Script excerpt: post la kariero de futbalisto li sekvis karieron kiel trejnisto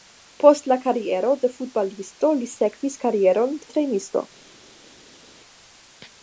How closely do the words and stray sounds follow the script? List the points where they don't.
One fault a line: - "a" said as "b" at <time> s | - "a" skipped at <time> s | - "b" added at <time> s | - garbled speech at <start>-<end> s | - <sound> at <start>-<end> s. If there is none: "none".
- "kiel" skipped at 3.5 s